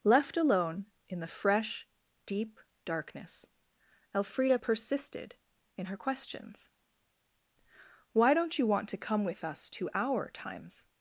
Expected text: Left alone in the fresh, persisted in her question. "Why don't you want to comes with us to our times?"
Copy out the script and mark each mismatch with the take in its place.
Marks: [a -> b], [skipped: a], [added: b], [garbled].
Left alone in the fresh, [added: deep darkness Elfrida] persisted in her [question. -> questions] "Why don't you want to [comes -> come] with us to our times?"